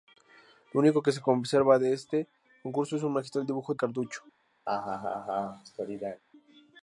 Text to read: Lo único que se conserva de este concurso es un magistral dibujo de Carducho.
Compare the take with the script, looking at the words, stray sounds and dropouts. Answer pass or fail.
fail